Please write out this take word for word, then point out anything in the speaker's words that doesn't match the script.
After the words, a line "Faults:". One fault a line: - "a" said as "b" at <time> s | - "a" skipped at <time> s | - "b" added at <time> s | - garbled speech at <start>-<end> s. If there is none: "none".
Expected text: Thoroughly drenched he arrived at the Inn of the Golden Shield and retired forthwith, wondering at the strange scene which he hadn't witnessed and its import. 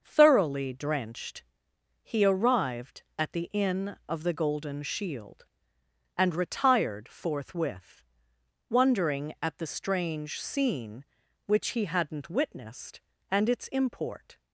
Thoroughly drenched he arrived at the Inn of the Golden Shield and retired forthwith, wondering at the strange scene which he hadn't witnessed and its import.
Faults:
none